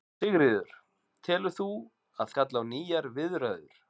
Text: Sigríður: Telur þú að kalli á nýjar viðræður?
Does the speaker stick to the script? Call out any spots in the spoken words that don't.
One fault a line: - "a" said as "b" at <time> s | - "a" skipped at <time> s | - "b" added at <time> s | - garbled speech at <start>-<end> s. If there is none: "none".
none